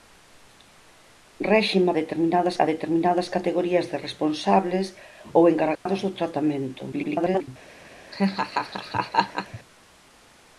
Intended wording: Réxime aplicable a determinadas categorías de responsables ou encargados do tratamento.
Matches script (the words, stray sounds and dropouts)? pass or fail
fail